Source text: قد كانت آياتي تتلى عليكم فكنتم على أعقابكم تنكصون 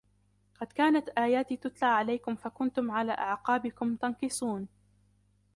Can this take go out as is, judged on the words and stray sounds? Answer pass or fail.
pass